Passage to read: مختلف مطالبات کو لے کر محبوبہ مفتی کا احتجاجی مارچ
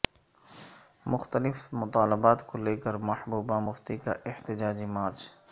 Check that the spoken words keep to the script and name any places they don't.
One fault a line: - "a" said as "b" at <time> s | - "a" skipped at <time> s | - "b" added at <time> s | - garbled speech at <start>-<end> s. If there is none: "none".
none